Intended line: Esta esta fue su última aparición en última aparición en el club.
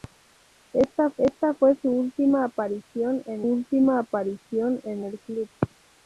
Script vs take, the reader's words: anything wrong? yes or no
no